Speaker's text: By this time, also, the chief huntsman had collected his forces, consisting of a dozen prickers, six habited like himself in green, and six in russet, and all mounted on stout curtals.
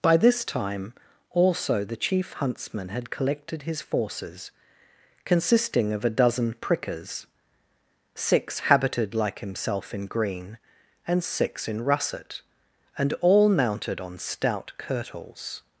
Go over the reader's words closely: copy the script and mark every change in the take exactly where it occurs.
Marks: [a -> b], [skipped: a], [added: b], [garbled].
By this time, also, the chief huntsman had collected his forces, consisting of a dozen prickers, six habited like himself in green, and six in russet, and all mounted on stout curtals.